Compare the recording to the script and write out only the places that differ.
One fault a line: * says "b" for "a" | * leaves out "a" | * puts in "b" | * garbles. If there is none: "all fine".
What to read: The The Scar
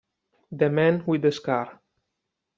* puts in "Man with"